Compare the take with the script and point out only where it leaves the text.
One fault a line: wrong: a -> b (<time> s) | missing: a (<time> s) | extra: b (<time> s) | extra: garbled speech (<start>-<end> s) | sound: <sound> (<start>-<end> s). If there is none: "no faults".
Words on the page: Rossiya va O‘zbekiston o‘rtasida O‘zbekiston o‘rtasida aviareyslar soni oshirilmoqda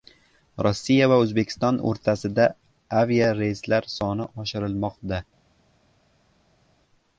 missing: O‘zbekiston o‘rtasida (2.5 s)